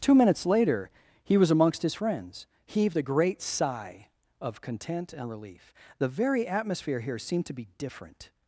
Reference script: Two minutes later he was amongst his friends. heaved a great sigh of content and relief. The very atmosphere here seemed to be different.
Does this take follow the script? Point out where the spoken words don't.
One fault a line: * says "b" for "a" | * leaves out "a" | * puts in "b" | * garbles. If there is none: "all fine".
all fine